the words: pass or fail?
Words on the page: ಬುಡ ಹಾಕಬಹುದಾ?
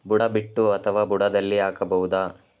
fail